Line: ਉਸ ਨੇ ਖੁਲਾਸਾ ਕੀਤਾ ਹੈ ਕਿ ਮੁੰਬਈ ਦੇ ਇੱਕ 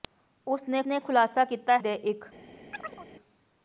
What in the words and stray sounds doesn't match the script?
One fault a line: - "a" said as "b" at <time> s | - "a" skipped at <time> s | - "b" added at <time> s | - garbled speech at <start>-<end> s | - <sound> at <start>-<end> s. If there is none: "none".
- "ਨੇ" added at 0.9 s
- "ਹੈ ਕਿ ਮੁੰਬਈ" skipped at 1.8 s
- chirp at 2.7-3.1 s